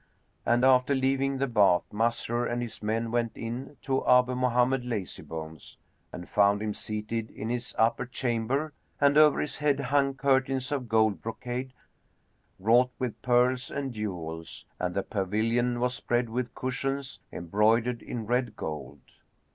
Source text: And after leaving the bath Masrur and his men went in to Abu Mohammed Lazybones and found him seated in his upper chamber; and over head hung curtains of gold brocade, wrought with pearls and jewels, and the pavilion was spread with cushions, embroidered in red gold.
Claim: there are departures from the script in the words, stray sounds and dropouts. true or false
true